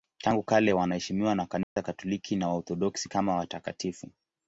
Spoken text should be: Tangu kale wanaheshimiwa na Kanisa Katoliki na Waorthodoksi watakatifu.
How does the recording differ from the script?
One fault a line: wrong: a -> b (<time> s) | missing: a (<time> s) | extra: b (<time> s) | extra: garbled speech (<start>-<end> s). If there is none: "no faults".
extra: kama (3.1 s)